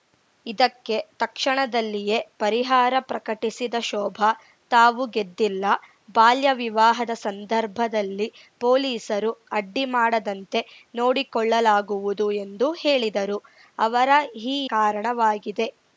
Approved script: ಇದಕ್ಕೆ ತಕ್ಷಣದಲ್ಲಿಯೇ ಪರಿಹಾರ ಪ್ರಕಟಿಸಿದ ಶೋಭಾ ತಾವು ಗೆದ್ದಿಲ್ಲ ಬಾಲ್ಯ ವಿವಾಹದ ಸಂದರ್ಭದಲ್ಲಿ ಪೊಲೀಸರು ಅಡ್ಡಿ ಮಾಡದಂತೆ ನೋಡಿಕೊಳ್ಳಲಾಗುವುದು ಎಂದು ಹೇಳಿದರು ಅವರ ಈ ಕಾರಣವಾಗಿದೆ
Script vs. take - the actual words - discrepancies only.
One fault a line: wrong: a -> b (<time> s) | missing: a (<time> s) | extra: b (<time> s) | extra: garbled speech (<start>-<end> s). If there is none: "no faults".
no faults